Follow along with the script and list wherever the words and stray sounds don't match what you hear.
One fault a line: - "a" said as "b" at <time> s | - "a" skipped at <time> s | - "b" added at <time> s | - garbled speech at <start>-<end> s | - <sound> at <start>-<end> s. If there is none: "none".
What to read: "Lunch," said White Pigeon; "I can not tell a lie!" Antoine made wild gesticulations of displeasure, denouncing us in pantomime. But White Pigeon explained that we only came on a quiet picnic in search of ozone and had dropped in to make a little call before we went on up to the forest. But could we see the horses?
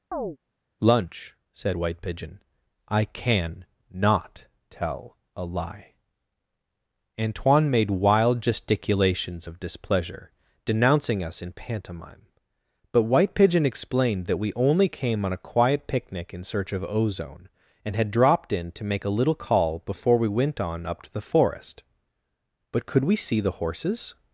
- chirp at 0.1-0.4 s